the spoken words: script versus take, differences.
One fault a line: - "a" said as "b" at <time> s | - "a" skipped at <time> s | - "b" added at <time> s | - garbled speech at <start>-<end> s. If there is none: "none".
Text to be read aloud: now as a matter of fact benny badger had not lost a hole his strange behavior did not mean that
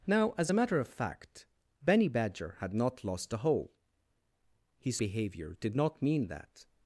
- "strange" skipped at 5.0 s